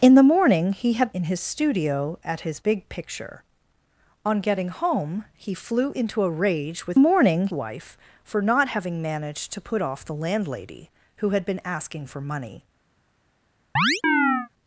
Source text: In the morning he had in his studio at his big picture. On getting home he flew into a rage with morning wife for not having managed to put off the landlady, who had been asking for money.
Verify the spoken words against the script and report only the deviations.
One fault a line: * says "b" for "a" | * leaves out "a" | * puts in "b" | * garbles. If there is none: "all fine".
all fine